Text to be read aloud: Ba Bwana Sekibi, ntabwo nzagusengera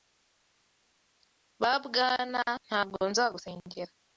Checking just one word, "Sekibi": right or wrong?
wrong